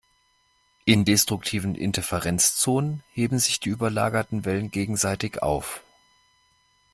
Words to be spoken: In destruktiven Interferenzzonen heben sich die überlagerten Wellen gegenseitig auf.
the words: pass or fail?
pass